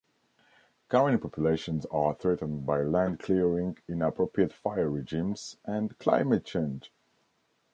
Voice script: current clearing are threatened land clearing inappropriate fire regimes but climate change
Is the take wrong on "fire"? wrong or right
right